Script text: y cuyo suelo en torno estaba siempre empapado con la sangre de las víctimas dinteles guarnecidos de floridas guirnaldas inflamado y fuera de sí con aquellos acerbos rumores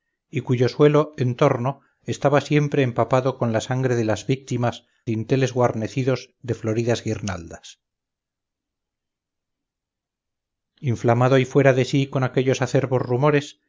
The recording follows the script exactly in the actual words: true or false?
true